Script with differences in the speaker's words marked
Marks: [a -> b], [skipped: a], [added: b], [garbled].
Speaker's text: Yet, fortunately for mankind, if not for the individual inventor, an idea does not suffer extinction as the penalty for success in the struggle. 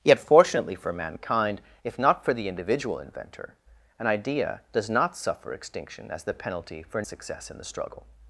Yet, fortunately for mankind, if not for the individual inventor, an idea does not suffer extinction as the penalty for success in the struggle.